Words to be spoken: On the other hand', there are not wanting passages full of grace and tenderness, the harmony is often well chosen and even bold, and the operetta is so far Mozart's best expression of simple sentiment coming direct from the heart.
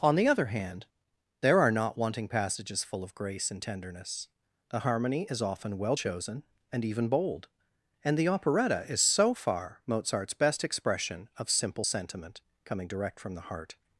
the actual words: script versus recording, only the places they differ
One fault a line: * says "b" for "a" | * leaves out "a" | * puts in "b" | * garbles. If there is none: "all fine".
all fine